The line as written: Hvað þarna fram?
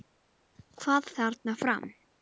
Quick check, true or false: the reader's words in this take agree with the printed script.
true